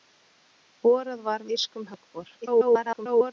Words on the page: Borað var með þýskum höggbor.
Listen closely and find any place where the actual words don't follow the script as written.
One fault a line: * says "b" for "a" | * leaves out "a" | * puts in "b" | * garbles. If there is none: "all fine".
* leaves out "með"
* garbles